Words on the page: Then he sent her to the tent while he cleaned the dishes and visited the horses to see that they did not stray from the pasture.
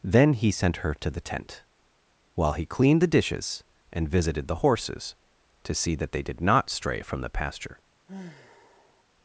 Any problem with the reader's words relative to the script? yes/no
no